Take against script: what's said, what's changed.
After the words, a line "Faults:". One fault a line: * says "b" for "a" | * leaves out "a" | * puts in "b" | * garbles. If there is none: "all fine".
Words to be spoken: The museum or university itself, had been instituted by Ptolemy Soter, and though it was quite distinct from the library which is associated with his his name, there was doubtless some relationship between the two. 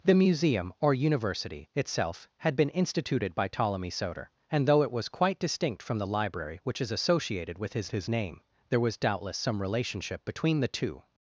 The museum or university itself, had been instituted by Ptolemy Soter, and though it was quite distinct from the library which is associated with his his name, there was doubtless some relationship between the two.
Faults:
all fine